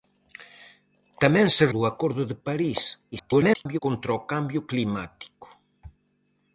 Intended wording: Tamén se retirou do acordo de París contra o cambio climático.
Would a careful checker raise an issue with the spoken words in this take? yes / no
yes